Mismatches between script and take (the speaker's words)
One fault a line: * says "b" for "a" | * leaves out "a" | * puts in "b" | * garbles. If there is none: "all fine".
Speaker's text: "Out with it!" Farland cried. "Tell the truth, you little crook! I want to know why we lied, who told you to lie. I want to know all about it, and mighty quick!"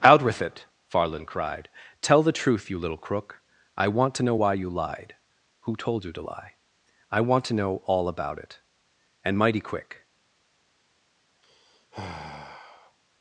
* says "you" for "we"